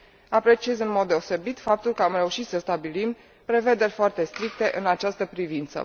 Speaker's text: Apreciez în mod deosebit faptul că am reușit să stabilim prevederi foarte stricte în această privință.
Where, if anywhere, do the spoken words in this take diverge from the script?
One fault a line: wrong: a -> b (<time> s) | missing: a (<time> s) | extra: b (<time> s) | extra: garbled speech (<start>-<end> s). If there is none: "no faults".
no faults